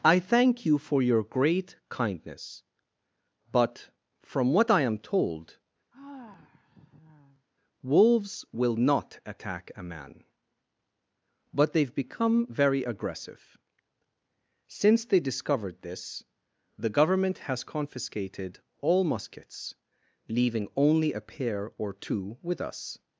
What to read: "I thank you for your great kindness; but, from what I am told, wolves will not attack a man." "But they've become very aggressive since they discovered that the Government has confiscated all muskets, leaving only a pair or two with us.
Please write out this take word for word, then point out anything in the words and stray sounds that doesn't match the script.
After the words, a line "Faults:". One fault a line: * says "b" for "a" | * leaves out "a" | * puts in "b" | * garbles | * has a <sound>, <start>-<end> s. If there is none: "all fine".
"I thank you for your great kindness; but, from what I am told, wolves will not attack a man." "But they've become very aggressive since they discovered this the Government has confiscated all muskets, leaving only a pair or two with us.
Faults:
* has a sigh, 5.9-7.5 s
* says "this" for "that"